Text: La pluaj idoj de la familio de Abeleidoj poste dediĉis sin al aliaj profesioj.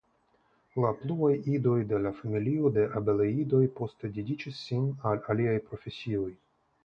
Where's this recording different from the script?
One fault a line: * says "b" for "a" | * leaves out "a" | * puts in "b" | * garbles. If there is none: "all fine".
all fine